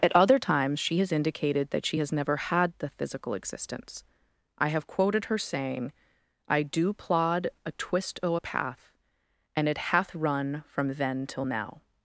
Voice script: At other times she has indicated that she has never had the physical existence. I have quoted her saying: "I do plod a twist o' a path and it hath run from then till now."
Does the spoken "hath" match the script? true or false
true